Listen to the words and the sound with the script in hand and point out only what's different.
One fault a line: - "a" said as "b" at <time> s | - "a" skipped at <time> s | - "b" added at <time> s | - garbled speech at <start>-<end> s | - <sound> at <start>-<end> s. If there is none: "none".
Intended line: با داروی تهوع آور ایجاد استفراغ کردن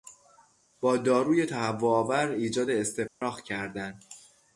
- dropout at 3.1-3.2 s